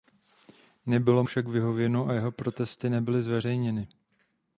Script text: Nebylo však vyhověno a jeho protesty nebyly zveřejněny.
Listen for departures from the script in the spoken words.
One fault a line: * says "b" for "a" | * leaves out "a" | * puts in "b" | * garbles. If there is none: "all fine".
all fine